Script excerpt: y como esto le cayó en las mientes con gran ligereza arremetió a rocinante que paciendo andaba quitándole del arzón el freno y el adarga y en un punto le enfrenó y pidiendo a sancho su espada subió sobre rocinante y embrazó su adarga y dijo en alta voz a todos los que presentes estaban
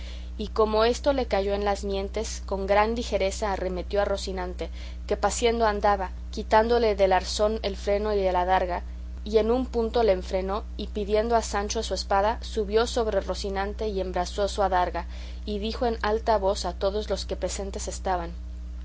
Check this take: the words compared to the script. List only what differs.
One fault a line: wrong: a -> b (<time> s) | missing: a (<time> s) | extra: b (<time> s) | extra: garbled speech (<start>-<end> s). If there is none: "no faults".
no faults